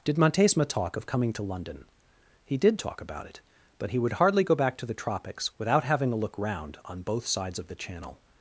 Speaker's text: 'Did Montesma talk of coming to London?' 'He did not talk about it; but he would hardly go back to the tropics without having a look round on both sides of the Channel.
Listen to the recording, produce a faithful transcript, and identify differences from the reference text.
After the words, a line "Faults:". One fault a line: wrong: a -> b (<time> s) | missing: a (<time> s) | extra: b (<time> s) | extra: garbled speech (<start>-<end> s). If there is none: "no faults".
'Did Montesma talk of coming to London?' 'He did talk about it; but he would hardly go back to the tropics without having a look round on both sides of the Channel.
Faults:
missing: not (2.8 s)